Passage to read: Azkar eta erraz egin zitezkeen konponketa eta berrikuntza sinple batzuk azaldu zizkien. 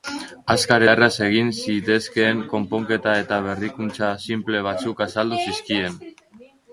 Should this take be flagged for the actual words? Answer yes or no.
yes